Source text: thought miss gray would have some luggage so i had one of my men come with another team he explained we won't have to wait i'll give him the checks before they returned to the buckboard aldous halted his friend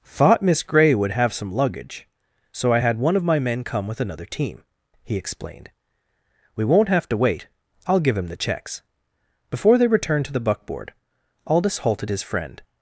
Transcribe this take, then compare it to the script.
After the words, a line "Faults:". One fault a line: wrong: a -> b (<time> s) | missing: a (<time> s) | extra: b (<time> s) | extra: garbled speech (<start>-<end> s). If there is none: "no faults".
thought miss gray would have some luggage so i had one of my men come with another team he explained we won't have to wait i'll give him the checks before they returned to the buckboard aldous halted his friend
Faults:
no faults